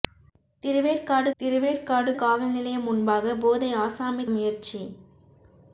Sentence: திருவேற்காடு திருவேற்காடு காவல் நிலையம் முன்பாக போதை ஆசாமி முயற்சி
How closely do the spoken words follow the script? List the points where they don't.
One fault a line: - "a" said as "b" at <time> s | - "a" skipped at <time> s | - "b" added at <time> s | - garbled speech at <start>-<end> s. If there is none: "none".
none